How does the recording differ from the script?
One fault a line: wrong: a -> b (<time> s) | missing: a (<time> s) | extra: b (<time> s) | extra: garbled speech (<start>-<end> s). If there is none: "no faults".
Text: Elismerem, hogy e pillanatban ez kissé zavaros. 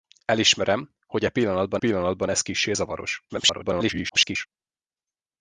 extra: pillanatban (1.8 s)
extra: garbled speech (3.3-4.5 s)